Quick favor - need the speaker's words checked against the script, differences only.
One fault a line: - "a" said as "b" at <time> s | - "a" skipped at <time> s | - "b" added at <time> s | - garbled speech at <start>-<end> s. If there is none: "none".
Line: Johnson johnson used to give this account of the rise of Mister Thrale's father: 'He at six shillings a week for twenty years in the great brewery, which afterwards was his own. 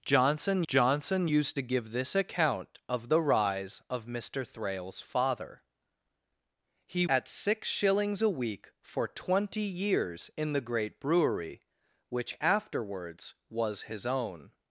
none